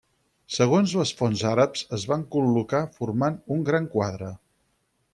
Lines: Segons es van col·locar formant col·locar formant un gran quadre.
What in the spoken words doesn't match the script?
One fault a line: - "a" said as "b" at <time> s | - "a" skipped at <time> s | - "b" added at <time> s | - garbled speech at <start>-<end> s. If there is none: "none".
- "les fonts àrabs" added at 1.0 s
- "col·locar formant" skipped at 3.4 s